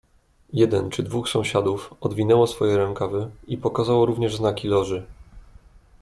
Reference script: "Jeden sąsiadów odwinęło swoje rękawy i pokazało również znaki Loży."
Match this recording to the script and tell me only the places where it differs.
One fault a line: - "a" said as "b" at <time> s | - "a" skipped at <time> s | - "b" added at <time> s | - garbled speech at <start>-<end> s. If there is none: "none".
- "czy dwóch" added at 0.9 s